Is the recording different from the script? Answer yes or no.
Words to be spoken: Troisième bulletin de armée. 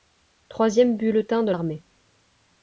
no